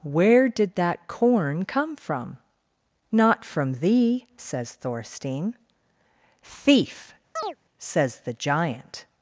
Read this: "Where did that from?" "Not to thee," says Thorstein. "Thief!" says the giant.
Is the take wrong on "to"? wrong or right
wrong